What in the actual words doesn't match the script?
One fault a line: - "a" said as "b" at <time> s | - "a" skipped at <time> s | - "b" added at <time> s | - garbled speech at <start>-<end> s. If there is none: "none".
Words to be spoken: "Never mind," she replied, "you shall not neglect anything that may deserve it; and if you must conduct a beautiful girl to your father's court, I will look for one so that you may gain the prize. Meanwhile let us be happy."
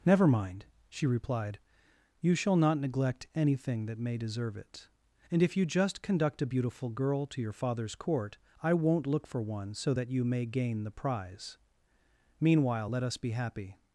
- "must" said as "just" at 5.7 s
- "will" said as "won't" at 8.7 s